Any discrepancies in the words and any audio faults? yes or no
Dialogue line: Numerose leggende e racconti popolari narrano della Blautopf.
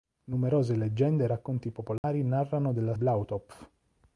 yes